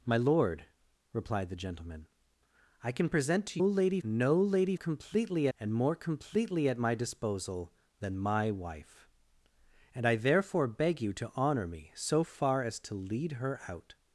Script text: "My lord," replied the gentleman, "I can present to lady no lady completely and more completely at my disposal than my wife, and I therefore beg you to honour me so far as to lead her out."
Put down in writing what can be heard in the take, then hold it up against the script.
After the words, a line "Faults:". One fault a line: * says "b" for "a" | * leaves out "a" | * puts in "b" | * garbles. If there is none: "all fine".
"My lord," replied the gentleman, "I can present to lady no lady completely and more completely at my disposal than my wife, and I therefore beg you to honour me so far as to lead her out."
Faults:
all fine